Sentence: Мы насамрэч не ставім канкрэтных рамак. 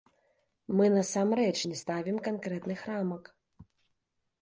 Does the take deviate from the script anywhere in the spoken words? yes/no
no